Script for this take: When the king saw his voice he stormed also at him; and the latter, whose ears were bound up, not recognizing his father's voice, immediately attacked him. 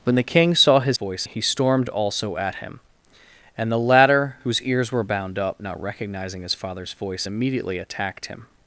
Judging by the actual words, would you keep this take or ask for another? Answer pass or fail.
pass